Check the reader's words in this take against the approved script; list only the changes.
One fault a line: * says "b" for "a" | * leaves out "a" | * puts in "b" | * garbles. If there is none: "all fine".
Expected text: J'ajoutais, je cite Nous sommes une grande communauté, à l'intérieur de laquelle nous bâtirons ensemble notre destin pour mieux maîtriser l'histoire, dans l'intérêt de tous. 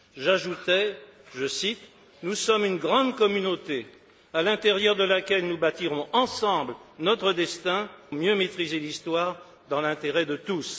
* leaves out "pour"